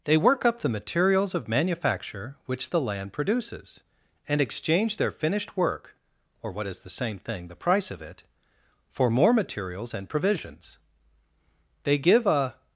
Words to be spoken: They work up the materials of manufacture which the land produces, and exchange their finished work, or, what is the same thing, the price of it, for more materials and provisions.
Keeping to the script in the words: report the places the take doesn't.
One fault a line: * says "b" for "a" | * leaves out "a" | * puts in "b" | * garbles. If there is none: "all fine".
* puts in "They give a"